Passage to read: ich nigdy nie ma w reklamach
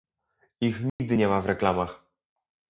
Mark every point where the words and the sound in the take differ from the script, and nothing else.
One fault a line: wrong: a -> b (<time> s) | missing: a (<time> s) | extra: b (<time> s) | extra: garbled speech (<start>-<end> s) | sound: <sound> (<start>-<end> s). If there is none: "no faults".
sound: dropout (0.9-1.0 s)